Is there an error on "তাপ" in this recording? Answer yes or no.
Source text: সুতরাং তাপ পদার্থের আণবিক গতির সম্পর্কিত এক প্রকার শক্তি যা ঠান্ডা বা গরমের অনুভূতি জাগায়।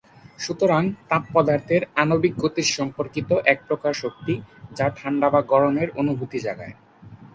no